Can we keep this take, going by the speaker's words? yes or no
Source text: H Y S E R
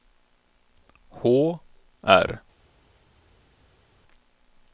no